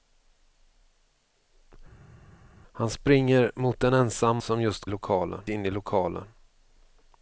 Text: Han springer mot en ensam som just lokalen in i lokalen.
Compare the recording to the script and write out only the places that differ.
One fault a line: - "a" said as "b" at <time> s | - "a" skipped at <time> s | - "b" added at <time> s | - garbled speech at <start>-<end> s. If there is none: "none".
none